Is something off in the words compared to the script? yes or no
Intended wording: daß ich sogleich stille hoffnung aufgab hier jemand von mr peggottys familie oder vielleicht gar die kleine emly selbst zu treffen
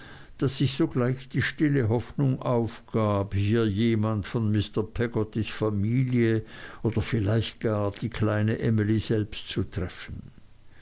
yes